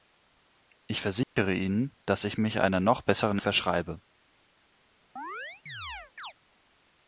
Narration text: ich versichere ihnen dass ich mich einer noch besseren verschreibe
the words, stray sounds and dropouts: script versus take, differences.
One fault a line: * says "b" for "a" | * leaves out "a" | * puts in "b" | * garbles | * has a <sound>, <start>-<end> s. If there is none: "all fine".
* has a dropout, 1.2-1.4 s
* has a chirp, 5.2-6.3 s